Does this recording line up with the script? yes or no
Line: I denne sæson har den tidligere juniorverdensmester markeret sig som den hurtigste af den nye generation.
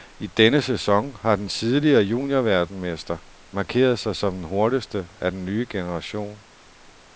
yes